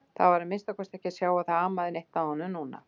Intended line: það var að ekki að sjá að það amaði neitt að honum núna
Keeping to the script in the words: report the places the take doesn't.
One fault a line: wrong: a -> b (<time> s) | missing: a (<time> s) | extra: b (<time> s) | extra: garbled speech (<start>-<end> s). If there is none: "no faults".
extra: minnsta kosti (0.5 s)